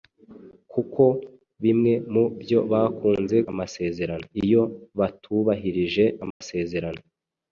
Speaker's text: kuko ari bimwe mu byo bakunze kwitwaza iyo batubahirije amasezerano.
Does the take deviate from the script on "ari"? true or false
true